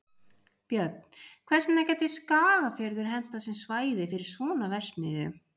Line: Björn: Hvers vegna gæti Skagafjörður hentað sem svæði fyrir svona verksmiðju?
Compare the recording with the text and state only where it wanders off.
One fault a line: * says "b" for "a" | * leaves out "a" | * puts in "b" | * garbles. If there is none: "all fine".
all fine